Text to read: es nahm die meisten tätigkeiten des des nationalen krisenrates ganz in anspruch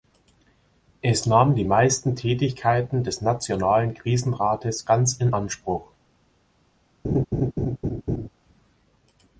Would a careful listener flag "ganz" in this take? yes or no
no